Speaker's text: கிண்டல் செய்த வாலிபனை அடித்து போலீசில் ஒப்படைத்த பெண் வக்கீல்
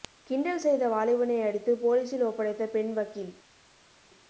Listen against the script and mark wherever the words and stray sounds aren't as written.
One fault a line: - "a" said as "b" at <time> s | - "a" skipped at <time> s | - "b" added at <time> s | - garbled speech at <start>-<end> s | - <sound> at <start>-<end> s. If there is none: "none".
none